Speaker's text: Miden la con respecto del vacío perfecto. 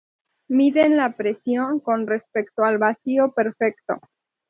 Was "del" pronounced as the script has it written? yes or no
no